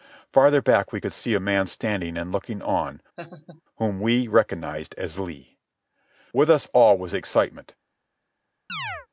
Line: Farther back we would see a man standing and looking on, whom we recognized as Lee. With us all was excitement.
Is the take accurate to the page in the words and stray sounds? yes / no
no